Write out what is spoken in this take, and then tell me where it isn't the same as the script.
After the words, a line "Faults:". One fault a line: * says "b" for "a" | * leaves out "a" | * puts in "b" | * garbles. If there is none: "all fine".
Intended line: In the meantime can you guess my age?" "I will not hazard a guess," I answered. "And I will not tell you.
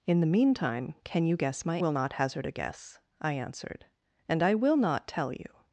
In the meantime can you guess my will not hazard a guess," I answered. "And I will not tell you.
Faults:
* leaves out "age I"